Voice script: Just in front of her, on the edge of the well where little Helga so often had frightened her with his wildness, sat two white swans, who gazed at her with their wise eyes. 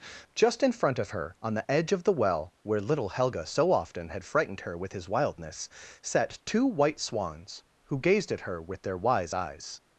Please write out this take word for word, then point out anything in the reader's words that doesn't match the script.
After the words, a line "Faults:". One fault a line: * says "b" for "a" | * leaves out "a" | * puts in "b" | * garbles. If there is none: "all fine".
Just in front of her, on the edge of the well where little Helga so often had frightened her with his wildness, sat two white swans, who gazed at her with their wise eyes.
Faults:
all fine